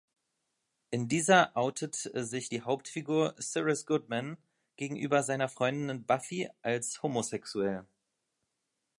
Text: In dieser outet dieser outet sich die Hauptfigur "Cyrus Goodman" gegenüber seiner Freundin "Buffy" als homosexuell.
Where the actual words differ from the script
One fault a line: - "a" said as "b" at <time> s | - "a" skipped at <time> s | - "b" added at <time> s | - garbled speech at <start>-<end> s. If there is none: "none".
- "dieser outet" skipped at 1.9 s